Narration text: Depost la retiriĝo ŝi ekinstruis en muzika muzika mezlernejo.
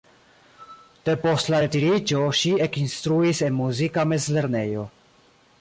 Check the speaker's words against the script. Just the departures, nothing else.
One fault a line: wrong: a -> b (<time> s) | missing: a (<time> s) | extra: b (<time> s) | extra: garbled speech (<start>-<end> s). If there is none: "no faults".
missing: muzika (4.0 s)